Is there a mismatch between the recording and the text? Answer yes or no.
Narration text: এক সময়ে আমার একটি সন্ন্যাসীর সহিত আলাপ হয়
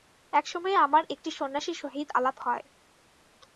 no